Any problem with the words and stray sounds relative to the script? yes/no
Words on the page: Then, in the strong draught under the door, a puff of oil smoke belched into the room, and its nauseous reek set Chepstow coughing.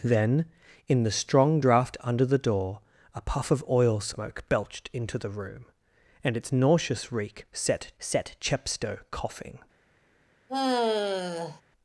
yes